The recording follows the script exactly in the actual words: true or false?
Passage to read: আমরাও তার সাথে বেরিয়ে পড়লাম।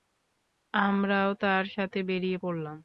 true